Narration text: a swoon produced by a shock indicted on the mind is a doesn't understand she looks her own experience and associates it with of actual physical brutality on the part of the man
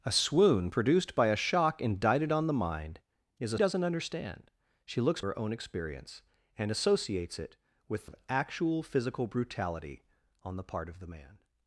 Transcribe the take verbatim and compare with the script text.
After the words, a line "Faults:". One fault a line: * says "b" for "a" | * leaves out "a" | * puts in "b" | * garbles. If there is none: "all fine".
a swoon produced by a shock indicted on the mind is a doesn't understand she looks her own experience and associates it with of actual physical brutality on the part of the man
Faults:
all fine